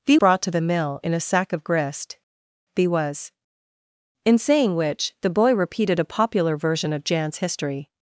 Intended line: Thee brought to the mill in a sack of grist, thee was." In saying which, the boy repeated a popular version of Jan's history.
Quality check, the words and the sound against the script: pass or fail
pass